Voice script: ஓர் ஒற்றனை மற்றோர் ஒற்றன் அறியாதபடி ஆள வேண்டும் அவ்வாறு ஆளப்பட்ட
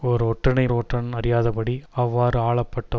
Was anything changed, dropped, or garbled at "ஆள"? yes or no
yes